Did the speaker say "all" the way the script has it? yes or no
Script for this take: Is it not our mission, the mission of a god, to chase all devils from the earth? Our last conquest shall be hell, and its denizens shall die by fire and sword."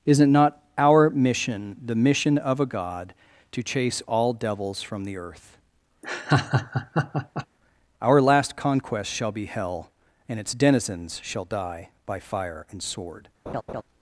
yes